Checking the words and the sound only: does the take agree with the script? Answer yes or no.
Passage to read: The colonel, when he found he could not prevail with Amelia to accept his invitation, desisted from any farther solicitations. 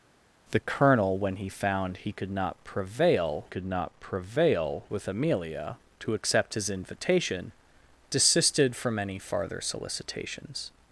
no